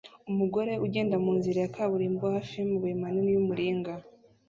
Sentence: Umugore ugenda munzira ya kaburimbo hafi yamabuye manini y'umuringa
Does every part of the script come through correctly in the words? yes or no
yes